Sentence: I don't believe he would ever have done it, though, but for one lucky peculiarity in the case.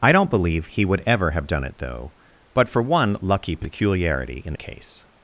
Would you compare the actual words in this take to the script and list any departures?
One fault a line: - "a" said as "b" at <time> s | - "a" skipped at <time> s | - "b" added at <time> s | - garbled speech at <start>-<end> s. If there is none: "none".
none